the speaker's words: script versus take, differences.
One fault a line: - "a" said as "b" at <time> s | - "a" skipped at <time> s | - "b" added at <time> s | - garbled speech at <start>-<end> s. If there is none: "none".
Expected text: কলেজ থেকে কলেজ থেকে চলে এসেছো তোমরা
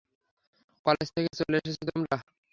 - "কলেজ থেকে" skipped at 1.3 s